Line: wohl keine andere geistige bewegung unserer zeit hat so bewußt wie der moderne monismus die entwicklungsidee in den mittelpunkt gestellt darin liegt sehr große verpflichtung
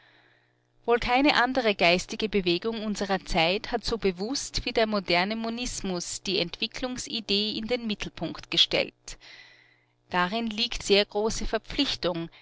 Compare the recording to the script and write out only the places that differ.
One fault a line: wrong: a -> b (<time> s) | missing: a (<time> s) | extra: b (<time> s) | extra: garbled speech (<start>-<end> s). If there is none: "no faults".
no faults